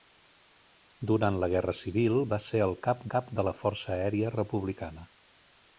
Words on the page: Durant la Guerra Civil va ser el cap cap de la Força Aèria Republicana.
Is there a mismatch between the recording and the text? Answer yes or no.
no